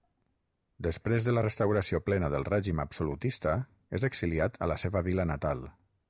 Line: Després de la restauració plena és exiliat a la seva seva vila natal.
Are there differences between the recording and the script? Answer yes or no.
yes